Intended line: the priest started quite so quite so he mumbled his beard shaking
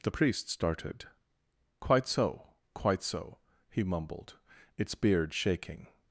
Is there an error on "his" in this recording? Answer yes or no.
yes